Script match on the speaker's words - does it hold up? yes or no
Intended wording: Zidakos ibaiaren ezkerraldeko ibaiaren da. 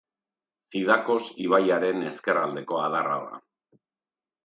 no